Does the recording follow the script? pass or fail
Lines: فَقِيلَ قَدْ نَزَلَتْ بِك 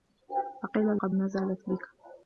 pass